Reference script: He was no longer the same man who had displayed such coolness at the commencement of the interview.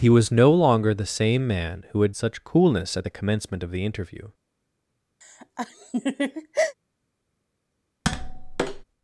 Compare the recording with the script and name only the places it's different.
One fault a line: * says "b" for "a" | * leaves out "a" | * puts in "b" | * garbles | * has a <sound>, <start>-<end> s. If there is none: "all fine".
* leaves out "displayed"
* has a laugh, 5.2-6.7 s
* has a tap, 8.0-8.8 s